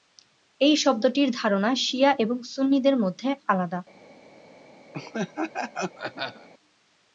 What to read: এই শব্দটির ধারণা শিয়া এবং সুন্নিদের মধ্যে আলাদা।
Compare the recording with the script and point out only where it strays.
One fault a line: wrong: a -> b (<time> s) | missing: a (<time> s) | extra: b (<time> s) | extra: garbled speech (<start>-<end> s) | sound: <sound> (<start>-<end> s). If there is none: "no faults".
sound: laugh (4.9-6.5 s)